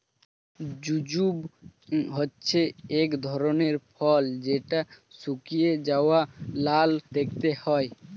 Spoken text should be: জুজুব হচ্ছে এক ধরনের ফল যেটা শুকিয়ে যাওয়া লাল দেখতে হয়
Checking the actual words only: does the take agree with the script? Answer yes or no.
yes